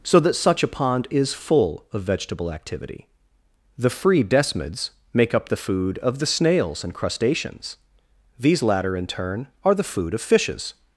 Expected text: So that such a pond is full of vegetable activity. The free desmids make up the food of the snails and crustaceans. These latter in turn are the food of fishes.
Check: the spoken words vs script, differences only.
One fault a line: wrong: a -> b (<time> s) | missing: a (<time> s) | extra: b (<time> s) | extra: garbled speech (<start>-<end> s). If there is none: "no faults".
no faults